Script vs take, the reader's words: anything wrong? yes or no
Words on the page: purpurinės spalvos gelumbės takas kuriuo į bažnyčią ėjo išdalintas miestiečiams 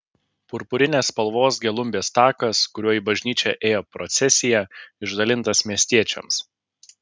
yes